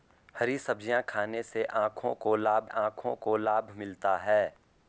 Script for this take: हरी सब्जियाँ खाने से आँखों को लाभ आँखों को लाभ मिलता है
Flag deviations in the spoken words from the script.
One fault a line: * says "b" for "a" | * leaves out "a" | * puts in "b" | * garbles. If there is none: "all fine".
all fine